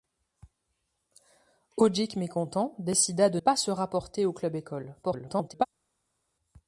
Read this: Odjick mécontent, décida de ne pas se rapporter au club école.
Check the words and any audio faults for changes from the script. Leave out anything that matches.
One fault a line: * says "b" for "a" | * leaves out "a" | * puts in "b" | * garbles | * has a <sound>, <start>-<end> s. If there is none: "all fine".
* leaves out "ne"
* garbles